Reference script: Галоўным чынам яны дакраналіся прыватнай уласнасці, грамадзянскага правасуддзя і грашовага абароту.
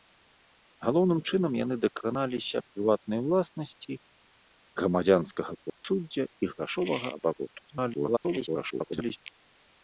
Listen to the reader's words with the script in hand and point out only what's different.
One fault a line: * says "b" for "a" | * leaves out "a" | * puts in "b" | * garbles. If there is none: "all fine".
* garbles